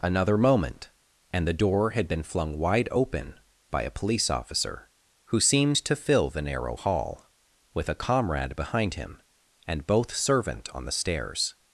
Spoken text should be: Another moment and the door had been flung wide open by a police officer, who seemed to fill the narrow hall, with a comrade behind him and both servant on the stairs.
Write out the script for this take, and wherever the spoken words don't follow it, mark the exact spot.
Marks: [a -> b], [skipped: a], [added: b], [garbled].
Another moment and the door had been flung wide open by a police officer, who seemed to fill the narrow hall, with a comrade behind him and both servant on the stairs.